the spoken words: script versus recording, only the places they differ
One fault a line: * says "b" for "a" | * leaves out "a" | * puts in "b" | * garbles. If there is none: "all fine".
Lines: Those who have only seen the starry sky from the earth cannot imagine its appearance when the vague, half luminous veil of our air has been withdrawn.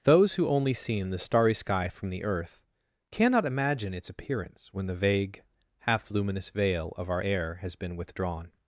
* leaves out "have"